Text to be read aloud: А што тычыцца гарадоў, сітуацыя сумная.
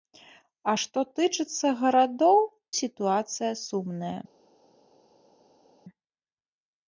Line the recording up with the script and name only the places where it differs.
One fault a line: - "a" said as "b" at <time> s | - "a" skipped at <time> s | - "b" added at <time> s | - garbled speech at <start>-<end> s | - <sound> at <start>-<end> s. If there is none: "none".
none